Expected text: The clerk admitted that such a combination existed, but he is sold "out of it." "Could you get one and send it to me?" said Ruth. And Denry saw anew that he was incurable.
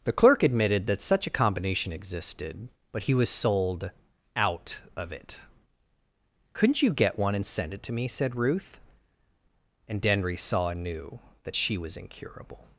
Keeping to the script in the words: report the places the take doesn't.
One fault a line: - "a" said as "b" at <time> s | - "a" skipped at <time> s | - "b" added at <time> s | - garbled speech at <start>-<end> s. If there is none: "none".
- "is" said as "was" at 3.1 s
- "Could" said as "Couldn't" at 6.5 s
- "he" said as "she" at 11.5 s